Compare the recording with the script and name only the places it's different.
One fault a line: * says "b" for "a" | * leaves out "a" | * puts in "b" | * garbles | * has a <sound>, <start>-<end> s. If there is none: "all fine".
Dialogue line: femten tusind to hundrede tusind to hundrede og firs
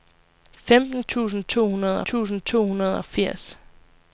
all fine